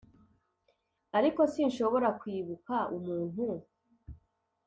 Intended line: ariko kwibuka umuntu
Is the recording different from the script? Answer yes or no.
yes